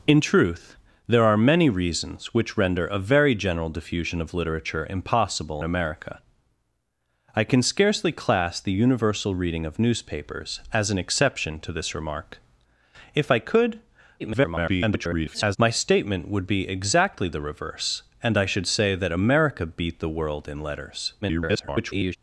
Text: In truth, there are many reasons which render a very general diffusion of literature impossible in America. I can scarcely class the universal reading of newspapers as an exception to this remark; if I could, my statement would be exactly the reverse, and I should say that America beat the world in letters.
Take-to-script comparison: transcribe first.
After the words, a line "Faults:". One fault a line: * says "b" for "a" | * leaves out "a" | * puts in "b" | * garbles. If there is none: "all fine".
In truth, there are many reasons which render a very general diffusion of literature impossible America. I can scarcely class the universal reading of newspapers as an exception to this remark; if I could, [garbled] my statement would be exactly the reverse, and I should say that America beat the world in letters. [garbled]
Faults:
* leaves out "in"
* garbles
* garbles